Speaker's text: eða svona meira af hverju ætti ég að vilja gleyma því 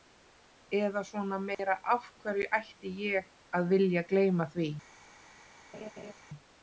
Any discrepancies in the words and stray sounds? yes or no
yes